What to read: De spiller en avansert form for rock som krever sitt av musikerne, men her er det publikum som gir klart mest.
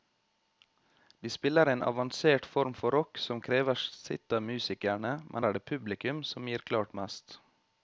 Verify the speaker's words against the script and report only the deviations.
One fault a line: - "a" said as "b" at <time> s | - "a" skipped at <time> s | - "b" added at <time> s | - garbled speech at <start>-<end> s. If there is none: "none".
- "her" skipped at 5.5 s